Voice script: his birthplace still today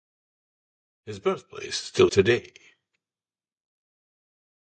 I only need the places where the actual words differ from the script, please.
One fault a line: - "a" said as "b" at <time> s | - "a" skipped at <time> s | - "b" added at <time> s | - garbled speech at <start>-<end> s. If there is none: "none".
none